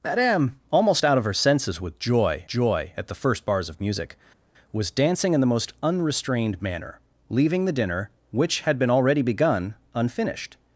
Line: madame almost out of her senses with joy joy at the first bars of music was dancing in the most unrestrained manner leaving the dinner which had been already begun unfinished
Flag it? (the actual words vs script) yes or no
no